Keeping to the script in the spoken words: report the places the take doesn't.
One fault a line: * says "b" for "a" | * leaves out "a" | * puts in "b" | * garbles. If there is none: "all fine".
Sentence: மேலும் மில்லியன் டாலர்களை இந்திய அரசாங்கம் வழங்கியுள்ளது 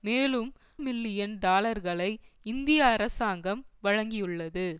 all fine